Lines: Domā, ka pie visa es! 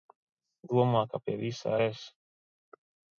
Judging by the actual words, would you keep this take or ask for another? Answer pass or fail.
pass